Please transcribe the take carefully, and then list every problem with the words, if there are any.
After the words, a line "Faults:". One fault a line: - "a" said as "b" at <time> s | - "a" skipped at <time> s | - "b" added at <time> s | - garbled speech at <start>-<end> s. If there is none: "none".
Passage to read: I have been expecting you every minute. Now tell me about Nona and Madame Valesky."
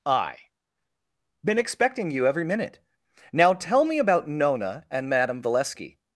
I been expecting you every minute. Now tell me about Nona and Madame Valesky."
Faults:
- "have" skipped at 0.4 s